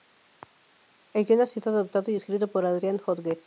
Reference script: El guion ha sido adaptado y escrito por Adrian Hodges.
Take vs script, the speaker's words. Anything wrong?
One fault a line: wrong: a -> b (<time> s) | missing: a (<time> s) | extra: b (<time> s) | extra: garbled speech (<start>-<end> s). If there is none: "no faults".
no faults